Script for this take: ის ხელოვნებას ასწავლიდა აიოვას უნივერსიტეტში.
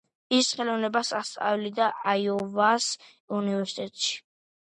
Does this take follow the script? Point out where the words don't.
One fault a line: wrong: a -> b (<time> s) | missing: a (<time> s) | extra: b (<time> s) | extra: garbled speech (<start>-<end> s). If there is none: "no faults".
no faults